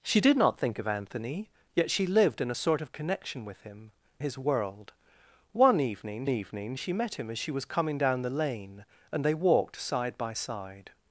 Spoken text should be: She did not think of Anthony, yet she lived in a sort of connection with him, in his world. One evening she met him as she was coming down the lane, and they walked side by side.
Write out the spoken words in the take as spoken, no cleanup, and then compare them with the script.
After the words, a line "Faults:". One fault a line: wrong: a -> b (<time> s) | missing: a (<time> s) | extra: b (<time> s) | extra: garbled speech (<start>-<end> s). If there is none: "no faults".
She did not think of Anthony, yet she lived in a sort of connection with him, his world. One evening evening she met him as she was coming down the lane, and they walked side by side.
Faults:
missing: in (3.9 s)
extra: evening (6.3 s)